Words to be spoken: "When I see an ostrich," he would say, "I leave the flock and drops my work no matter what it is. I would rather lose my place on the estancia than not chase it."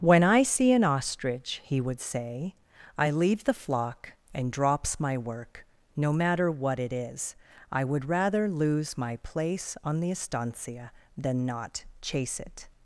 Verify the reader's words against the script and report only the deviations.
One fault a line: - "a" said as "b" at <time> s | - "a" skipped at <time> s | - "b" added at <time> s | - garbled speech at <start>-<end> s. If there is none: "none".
none